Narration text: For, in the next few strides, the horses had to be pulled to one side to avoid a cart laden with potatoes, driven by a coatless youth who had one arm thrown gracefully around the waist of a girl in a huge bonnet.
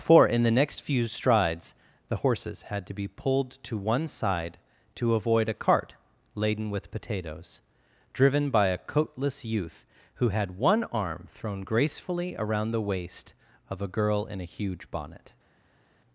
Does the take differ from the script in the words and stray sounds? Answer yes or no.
no